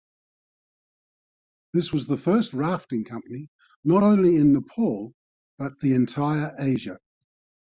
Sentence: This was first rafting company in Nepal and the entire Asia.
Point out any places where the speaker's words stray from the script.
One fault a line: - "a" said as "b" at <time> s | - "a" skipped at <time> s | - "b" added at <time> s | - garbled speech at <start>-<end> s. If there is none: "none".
- "the" added at 2.1 s
- "not only" added at 3.8 s
- "and" said as "but" at 5.6 s